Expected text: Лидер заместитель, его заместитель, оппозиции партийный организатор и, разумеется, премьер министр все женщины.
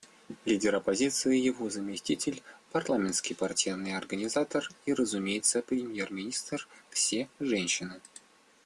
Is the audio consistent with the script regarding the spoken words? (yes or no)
no